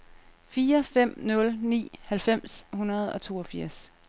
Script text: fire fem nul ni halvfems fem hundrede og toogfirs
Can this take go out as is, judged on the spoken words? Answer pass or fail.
fail